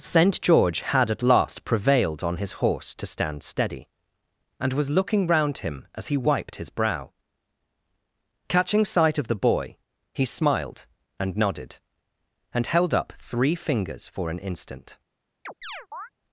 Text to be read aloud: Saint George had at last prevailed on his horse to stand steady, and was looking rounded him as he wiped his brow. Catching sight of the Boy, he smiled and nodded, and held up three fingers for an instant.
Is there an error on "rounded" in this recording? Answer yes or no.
yes